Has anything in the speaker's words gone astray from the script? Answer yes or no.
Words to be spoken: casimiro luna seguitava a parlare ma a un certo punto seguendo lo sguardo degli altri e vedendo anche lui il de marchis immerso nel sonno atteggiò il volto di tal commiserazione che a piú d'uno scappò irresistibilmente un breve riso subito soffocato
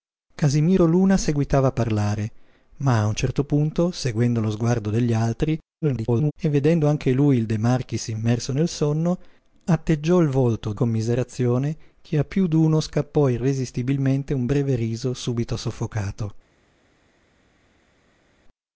yes